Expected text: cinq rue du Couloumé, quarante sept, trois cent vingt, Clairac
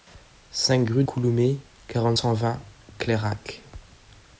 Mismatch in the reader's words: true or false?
true